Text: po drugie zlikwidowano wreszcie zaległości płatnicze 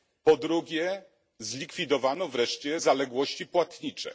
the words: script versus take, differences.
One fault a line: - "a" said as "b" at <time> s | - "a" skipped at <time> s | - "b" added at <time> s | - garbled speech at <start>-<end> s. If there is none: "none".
none